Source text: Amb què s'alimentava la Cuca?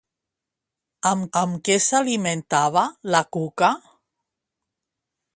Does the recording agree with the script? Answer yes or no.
no